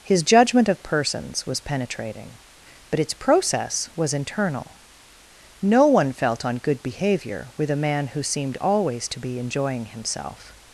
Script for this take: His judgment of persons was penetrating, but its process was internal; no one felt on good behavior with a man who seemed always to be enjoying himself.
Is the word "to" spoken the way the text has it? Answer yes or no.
yes